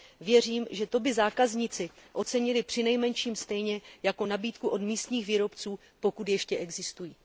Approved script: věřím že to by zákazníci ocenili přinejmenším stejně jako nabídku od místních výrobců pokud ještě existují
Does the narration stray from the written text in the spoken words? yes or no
no